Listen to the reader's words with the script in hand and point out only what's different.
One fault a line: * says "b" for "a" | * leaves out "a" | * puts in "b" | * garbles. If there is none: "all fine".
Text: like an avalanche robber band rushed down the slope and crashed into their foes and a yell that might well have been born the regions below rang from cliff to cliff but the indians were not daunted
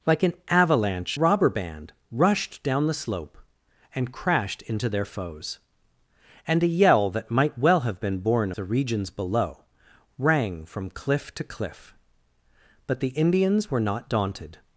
all fine